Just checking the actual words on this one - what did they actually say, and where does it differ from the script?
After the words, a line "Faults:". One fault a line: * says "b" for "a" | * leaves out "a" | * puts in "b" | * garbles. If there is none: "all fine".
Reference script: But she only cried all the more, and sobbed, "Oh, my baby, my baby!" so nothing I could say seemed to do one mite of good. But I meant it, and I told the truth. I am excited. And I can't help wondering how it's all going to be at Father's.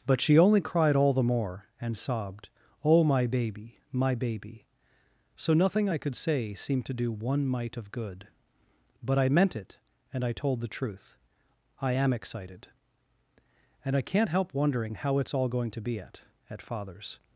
But she only cried all the more, and sobbed, "Oh, my baby, my baby!" so nothing I could say seemed to do one mite of good. But I meant it, and I told the truth. I am excited. And I can't help wondering how it's all going to be at at Father's.
Faults:
* puts in "at"